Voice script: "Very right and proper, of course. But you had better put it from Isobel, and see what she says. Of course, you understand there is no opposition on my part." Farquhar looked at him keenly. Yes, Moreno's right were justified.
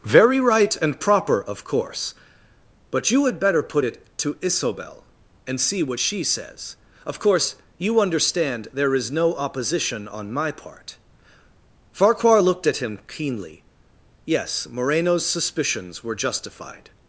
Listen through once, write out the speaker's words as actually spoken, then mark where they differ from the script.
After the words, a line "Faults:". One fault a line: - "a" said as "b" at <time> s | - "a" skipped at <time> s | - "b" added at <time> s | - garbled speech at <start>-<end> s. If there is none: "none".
"Very right and proper, of course. But you had better put it to Isobel, and see what she says. Of course, you understand there is no opposition on my part." Farquhar looked at him keenly. Yes, Moreno's suspicions were justified.
Faults:
- "from" said as "to" at 4.2 s
- "right" said as "suspicions" at 15.3 s